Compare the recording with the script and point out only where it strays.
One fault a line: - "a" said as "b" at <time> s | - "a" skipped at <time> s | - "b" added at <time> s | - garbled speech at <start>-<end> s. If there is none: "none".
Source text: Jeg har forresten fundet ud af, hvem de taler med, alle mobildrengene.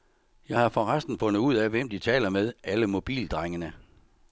none